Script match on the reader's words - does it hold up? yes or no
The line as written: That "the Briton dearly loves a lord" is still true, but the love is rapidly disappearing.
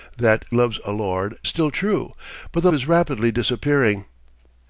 no